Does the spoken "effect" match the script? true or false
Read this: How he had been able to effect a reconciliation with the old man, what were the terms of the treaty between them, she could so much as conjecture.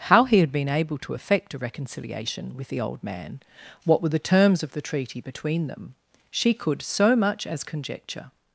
true